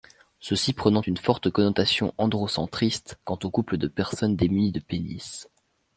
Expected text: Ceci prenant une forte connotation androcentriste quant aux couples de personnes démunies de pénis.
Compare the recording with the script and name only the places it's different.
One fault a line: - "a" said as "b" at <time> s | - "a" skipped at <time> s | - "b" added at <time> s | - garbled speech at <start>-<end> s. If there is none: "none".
none